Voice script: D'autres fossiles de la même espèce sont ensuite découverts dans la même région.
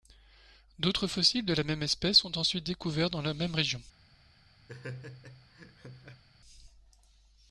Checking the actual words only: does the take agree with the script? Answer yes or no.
yes